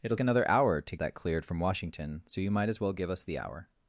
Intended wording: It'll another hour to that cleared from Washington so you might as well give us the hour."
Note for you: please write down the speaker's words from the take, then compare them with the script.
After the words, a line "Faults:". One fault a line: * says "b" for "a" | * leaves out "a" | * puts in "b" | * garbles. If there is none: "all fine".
It'll another hour to that cleared from Washington so you might as well give us the hour."
Faults:
all fine